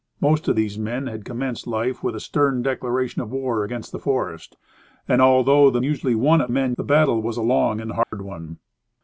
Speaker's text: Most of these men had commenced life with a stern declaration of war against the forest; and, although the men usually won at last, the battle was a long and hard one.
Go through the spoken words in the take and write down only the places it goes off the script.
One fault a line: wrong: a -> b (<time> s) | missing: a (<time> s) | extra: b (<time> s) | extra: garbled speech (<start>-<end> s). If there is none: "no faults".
missing: men (5.8 s)
wrong: last -> men (6.5 s)